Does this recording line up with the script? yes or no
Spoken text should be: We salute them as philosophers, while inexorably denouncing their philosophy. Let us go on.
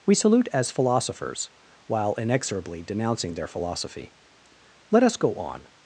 no